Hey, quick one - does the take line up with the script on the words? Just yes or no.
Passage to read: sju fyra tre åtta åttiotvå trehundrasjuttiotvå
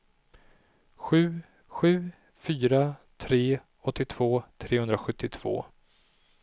no